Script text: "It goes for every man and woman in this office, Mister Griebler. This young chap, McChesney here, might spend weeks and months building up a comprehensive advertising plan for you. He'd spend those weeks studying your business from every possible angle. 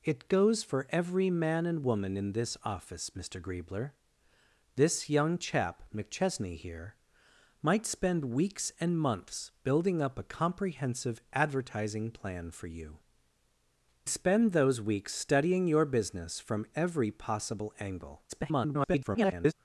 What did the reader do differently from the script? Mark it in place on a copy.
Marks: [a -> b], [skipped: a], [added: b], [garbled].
"It goes for every man and woman in this office, Mister Griebler. This young chap, McChesney here, might spend weeks and months building up a comprehensive advertising plan for you. [skipped: He'd] spend those weeks studying your business from every possible angle. [garbled]